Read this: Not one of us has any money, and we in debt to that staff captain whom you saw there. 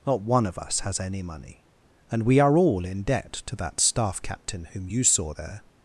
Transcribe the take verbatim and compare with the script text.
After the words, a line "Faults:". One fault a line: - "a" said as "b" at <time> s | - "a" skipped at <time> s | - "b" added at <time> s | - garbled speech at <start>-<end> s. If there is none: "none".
Not one of us has any money, and we are all in debt to that staff captain whom you saw there.
Faults:
- "are all" added at 2.4 s